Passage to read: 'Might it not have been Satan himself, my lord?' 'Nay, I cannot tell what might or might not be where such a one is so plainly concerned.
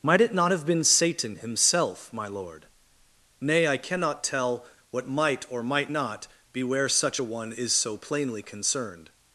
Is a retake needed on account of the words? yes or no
no